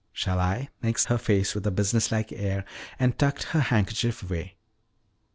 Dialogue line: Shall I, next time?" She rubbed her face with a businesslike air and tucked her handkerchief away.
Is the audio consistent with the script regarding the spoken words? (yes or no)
no